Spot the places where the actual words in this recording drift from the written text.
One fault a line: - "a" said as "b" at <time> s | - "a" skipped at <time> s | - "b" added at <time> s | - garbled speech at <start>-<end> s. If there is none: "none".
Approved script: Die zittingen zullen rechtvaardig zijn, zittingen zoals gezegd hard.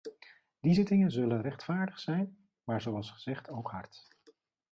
- "zittingen" said as "maar" at 2.6 s
- "ook" added at 3.5 s